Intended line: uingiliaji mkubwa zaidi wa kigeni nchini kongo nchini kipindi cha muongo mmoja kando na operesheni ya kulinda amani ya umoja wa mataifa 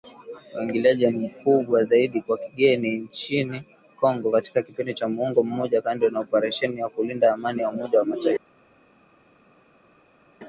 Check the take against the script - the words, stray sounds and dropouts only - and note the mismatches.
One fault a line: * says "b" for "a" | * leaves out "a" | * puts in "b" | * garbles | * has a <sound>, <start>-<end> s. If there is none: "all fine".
* says "katika" for "nchini"